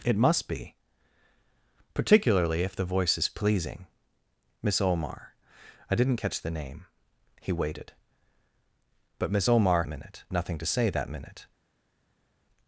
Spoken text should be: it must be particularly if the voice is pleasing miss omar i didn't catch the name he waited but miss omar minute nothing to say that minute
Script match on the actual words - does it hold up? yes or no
yes